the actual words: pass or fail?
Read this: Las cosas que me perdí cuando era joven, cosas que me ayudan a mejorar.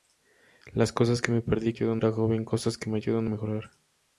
fail